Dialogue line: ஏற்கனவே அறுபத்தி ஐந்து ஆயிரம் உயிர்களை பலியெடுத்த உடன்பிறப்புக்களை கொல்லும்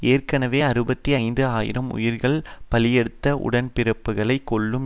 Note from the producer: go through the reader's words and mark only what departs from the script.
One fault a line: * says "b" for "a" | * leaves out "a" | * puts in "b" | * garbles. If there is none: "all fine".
all fine